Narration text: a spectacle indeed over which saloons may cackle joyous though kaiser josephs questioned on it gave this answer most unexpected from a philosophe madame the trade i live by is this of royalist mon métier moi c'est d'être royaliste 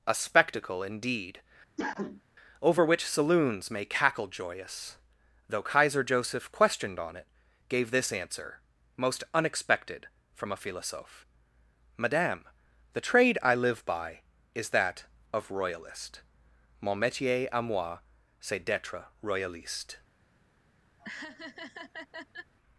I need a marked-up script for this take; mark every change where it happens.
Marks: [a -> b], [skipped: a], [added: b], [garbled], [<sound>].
a spectacle indeed [cough] over which saloons may cackle joyous though kaiser [josephs -> joseph] questioned on it gave this answer most unexpected from a philosophe madame the trade i live by is [this -> that] of royalist mon métier [added: à] moi c'est d'être royaliste [laugh]